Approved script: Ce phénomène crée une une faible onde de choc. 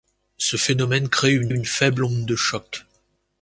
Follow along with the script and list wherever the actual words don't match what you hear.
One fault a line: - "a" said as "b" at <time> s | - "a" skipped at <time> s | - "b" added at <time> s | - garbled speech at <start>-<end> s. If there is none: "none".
none